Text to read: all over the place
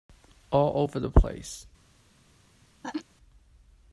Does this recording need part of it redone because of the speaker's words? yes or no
no